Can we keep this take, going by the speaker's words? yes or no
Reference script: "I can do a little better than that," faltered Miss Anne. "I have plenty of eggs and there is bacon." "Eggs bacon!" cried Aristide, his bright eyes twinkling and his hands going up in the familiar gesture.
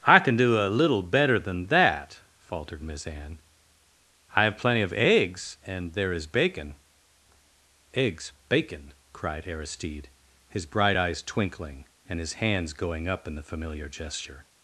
yes